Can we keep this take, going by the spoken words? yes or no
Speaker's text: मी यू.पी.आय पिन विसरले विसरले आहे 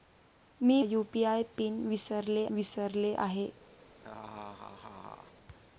yes